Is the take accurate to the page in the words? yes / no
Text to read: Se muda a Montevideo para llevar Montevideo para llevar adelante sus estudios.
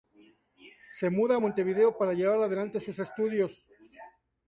no